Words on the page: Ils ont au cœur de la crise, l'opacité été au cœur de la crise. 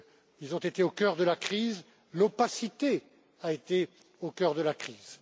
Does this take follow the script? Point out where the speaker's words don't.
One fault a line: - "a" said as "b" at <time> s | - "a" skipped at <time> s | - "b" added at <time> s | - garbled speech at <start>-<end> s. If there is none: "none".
- "été" added at 0.6 s
- "a" added at 3.4 s